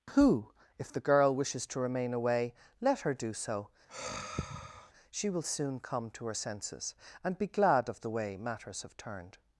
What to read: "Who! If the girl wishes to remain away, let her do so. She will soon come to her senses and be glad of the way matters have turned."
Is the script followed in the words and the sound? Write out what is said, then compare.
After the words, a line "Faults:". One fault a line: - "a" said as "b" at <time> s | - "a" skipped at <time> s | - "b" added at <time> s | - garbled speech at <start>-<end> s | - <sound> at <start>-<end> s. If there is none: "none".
"Who! If the girl wishes to remain away, let her do so. She will soon come to her senses and be glad of the way matters have turned."
Faults:
- sigh at 3.9-4.9 s